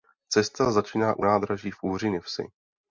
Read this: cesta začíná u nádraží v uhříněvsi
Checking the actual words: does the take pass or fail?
pass